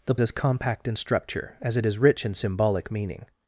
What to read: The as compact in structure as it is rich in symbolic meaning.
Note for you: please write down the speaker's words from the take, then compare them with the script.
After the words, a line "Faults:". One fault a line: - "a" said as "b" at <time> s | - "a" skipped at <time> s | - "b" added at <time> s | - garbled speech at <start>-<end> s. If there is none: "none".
The as compact in structure as it is rich in symbolic meaning.
Faults:
none